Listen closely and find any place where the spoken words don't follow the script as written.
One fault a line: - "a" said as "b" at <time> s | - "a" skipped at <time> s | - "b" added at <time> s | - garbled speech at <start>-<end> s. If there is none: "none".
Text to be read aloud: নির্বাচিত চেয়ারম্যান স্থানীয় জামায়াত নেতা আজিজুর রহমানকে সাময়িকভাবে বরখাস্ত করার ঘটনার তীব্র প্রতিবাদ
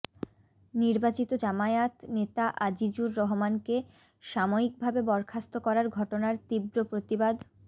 - "চেয়ারম্যান স্থানীয়" skipped at 1.3 s